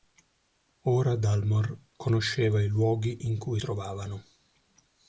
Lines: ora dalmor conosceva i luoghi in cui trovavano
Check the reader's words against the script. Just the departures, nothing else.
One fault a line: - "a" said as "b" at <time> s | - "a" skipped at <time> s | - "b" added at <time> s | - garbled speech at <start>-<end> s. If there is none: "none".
none